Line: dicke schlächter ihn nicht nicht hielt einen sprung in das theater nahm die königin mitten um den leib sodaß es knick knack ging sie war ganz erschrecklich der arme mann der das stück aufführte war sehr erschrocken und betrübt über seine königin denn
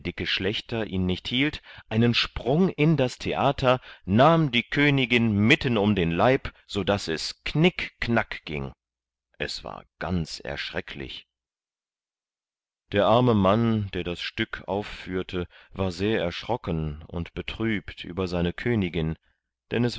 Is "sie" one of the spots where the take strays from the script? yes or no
yes